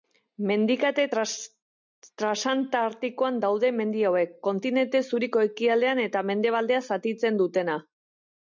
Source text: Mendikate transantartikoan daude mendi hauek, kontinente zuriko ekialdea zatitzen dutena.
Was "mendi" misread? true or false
false